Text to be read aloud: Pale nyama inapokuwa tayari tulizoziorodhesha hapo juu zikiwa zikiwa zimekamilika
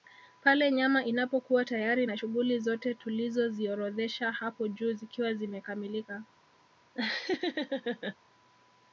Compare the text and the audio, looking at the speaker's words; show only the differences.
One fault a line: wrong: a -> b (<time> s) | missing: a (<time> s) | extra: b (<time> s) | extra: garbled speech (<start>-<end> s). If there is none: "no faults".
extra: na shughuli zote (2.0 s)
missing: zikiwa (5.3 s)